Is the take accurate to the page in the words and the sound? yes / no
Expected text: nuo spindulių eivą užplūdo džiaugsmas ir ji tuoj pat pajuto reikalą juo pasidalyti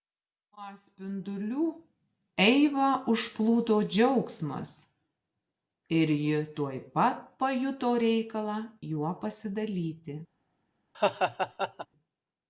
no